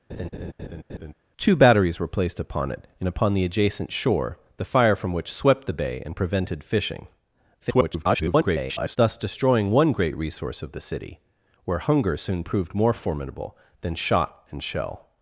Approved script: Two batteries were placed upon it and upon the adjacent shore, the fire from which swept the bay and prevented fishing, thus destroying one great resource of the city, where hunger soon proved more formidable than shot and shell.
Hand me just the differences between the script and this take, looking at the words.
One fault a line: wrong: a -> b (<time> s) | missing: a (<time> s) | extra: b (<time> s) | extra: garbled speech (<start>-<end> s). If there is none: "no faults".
extra: garbled speech (7.6-9.0 s)